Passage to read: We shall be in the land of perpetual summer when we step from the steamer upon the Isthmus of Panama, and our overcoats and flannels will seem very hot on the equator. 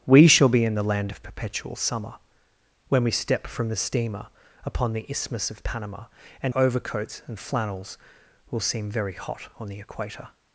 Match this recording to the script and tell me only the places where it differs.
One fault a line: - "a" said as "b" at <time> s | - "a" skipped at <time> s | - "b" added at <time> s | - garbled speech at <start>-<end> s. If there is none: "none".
- "our" skipped at 6.5 s